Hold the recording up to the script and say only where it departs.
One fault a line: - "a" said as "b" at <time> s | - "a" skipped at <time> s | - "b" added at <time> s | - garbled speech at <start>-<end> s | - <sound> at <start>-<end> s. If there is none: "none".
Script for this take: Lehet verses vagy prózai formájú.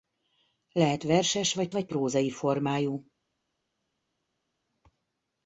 - "vagy" added at 1.7 s